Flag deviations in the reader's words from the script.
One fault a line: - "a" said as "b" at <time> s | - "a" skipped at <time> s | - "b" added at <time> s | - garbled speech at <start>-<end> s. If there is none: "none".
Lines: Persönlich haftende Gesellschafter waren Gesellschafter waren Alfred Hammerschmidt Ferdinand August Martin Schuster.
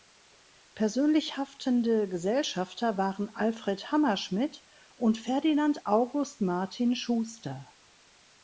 - "Gesellschafter waren" skipped at 3.3 s
- "und" added at 4.9 s